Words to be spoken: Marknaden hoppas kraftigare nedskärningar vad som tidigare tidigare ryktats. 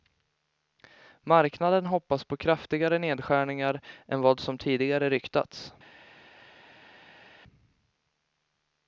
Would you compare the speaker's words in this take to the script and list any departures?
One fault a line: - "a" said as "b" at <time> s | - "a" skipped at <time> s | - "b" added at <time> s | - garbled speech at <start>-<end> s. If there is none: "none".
- "på" added at 2.2 s
- "än" added at 4.1 s
- "tidigare" skipped at 5.1 s